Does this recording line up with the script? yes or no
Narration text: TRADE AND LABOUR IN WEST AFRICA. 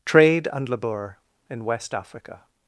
yes